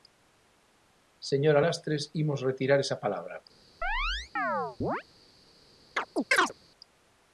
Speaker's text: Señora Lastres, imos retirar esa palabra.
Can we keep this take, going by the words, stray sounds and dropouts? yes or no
no